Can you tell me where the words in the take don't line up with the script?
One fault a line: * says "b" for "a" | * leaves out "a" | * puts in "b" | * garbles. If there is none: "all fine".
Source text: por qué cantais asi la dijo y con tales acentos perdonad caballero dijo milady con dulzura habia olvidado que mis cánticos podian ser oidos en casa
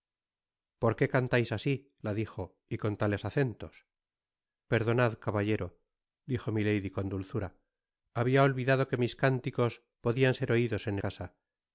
all fine